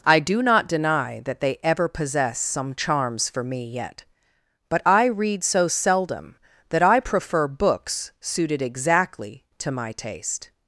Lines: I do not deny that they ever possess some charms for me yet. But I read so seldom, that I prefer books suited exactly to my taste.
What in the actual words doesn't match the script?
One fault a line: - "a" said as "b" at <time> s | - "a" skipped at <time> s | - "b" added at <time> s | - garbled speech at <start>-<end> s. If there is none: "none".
none